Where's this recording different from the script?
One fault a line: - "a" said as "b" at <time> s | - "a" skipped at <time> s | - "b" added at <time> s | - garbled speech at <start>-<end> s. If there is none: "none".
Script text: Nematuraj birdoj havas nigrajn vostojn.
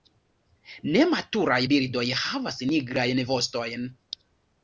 none